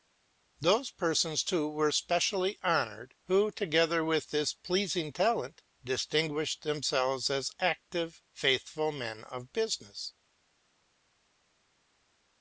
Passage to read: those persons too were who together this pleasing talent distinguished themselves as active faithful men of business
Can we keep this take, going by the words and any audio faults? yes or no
no